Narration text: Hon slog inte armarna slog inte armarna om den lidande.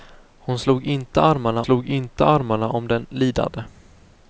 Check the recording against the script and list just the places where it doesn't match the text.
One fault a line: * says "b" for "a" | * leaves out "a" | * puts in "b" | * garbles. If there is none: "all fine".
all fine